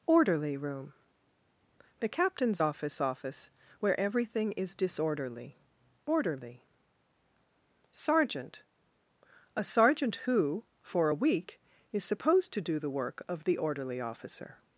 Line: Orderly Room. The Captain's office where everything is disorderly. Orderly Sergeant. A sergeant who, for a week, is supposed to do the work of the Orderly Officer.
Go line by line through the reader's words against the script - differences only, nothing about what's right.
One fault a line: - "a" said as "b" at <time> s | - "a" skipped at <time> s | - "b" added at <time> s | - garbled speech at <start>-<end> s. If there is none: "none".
- "office" added at 3.0 s